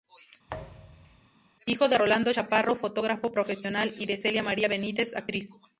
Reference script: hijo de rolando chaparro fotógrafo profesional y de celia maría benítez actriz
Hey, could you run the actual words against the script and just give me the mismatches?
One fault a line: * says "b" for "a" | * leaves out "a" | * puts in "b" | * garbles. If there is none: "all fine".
all fine